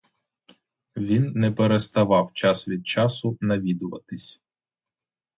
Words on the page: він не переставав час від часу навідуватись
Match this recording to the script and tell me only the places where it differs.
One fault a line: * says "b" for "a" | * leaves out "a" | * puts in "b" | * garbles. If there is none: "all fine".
all fine